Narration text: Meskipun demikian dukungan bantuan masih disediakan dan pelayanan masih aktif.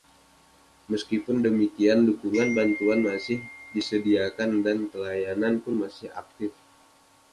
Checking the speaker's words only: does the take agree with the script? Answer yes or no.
no